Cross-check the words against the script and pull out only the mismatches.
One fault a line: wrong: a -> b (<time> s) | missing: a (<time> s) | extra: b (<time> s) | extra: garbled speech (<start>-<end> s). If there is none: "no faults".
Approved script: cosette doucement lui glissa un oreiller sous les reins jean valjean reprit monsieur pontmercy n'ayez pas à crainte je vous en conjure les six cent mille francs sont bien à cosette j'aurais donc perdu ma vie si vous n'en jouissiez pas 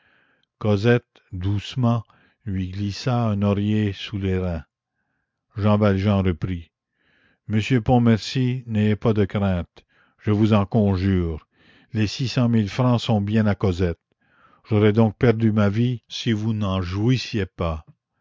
wrong: à -> de (9.1 s)